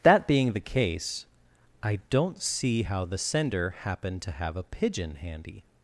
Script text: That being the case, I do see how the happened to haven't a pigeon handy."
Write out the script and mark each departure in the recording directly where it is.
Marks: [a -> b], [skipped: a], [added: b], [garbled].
That being the case, I [do -> don't] see how the [added: sender] happened to [haven't -> have] a pigeon handy."